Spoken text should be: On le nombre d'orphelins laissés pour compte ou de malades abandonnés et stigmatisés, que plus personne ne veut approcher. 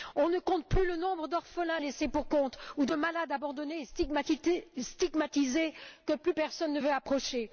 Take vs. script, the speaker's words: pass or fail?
fail